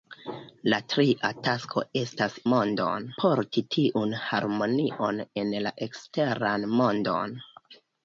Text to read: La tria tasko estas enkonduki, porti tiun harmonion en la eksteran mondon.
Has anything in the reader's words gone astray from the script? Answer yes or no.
yes